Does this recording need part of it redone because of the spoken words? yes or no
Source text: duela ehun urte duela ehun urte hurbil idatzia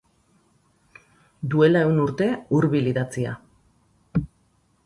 yes